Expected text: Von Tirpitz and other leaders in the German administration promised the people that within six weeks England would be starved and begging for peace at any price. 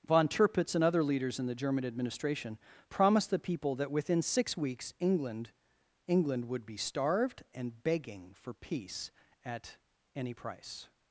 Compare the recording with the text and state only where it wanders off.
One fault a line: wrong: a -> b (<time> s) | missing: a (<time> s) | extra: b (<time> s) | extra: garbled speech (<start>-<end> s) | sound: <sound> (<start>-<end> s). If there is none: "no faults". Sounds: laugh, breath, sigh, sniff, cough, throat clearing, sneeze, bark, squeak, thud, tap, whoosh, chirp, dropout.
extra: England (6.1 s)